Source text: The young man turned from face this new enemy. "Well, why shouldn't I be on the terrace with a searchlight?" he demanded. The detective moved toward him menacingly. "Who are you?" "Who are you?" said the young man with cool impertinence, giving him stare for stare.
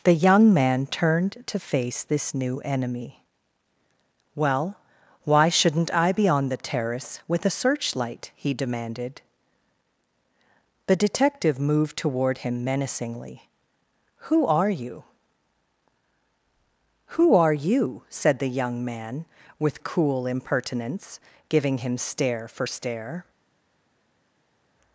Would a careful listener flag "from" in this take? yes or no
yes